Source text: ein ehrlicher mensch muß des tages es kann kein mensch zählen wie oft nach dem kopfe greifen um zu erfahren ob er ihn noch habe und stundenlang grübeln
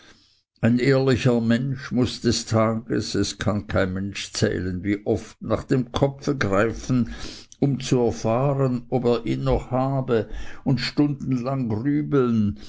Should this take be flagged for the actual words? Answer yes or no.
no